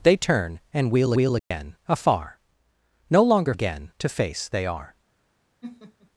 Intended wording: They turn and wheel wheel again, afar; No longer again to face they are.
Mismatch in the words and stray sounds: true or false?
true